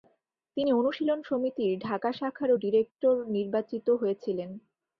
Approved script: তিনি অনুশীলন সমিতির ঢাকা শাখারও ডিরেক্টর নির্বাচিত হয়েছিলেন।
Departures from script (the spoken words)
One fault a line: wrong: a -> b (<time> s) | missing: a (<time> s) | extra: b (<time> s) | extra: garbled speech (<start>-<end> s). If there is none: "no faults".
no faults